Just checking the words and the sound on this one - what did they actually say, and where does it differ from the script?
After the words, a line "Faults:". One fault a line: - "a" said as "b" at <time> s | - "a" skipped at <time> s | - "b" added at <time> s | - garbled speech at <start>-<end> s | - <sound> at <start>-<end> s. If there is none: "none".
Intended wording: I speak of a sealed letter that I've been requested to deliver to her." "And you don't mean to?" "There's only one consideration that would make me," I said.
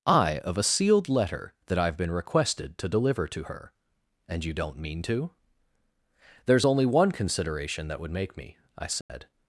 I of a sealed letter that I've been requested to deliver to her." "And you don't mean to?" "There's only one consideration that would make me," I said.
Faults:
- "speak" skipped at 0.4 s
- dropout at 9.0-9.1 s